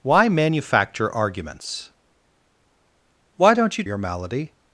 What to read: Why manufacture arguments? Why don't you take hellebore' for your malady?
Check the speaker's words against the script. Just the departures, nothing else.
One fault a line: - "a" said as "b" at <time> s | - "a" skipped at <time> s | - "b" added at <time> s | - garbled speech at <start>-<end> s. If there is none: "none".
- "take hellebore for" skipped at 3.8 s